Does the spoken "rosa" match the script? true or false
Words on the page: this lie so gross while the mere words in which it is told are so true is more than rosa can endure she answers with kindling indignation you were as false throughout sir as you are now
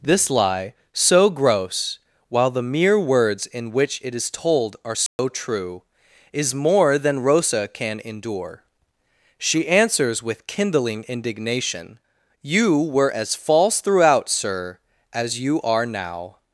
true